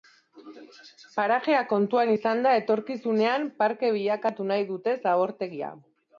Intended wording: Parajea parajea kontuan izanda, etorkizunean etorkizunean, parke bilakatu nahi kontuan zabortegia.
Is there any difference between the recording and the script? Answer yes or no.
yes